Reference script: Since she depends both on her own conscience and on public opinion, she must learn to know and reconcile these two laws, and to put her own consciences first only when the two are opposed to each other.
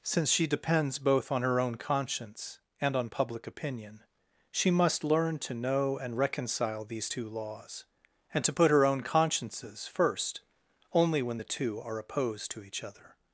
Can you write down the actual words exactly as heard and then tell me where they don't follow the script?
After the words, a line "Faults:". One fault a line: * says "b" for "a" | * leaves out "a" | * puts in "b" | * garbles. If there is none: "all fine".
Since she depends both on her own conscience and on public opinion, she must learn to know and reconcile these two laws, and to put her own consciences first only when the two are opposed to each other.
Faults:
all fine